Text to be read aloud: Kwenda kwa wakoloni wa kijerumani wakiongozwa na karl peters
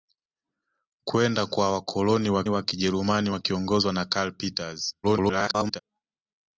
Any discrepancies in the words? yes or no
yes